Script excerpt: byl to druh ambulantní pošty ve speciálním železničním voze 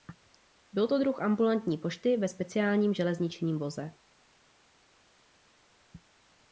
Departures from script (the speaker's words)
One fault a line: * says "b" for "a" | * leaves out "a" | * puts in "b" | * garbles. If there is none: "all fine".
all fine